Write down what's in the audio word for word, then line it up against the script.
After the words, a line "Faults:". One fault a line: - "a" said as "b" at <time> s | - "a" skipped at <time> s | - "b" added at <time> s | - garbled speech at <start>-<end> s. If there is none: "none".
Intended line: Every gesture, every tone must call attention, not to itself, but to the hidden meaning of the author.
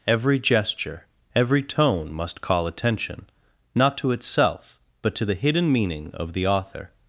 Every gesture, every tone must call attention, not to itself, but to the hidden meaning of the author.
Faults:
none